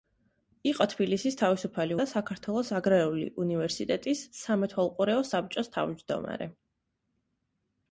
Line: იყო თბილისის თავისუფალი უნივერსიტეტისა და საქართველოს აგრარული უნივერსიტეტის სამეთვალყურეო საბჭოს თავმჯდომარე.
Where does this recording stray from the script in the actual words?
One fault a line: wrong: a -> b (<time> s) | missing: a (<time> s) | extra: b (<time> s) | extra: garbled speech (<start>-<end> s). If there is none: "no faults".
missing: უნივერსიტეტისა (2.0 s)